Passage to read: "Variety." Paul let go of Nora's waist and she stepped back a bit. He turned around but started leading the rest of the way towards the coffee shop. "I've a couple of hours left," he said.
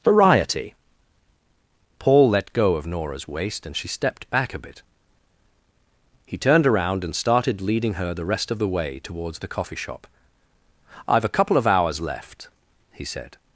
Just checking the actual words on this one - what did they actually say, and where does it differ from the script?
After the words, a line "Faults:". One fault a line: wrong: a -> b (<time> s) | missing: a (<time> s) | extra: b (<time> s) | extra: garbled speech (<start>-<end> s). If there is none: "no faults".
"Variety." Paul let go of Nora's waist and she stepped back a bit. He turned around and started leading her the rest of the way towards the coffee shop. "I've a couple of hours left," he said.
Faults:
wrong: but -> and (7.0 s)
extra: her (8.0 s)